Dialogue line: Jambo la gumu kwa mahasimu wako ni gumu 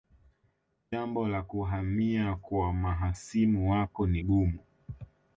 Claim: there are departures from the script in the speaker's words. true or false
true